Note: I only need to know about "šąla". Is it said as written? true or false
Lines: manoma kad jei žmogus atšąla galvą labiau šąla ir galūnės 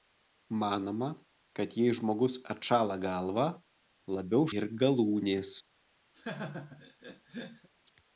false